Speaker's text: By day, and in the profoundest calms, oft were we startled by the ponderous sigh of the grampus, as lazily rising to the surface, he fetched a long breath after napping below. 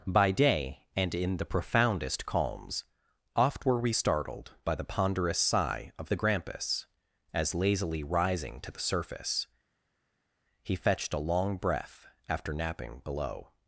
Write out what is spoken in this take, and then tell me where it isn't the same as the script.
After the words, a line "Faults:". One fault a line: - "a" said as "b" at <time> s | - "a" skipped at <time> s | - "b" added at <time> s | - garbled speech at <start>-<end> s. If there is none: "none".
By day, and in the profoundest calms, oft were we startled by the ponderous sigh of the grampus, as lazily rising to the surface, he fetched a long breath after napping below.
Faults:
none